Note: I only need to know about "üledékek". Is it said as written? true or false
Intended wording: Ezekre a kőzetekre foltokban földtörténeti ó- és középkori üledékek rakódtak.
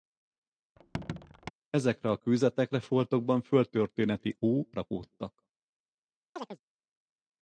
false